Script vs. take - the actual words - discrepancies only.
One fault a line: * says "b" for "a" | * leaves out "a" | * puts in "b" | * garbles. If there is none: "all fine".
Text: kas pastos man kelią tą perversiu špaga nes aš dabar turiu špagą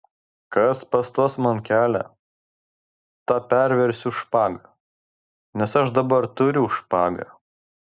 all fine